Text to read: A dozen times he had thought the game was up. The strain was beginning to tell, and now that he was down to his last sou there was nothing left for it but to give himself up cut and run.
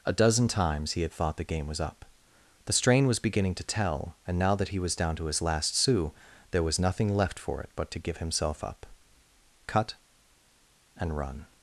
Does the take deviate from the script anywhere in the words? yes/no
no